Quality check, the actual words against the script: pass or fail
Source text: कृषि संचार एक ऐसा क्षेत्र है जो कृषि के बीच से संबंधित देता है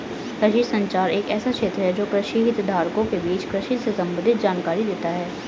fail